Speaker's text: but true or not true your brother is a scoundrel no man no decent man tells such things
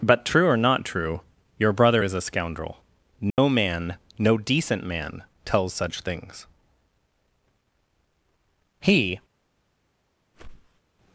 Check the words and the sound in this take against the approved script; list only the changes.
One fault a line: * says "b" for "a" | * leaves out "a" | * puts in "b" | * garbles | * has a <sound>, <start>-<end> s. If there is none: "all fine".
* has a dropout, 3.3-3.4 s
* puts in "he"
* has a whoosh, 10.3-10.8 s